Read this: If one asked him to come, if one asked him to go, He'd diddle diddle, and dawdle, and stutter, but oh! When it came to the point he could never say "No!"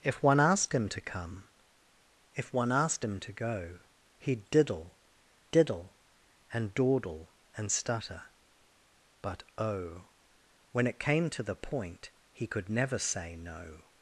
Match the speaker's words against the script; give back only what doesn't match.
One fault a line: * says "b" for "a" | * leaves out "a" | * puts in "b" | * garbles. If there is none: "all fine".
all fine